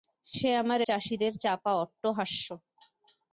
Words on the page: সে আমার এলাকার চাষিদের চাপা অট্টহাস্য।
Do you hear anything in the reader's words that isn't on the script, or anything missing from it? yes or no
yes